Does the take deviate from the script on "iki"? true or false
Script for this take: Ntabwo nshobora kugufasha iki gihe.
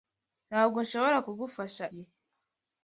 true